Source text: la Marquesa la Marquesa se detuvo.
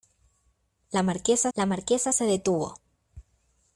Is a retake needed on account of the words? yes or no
no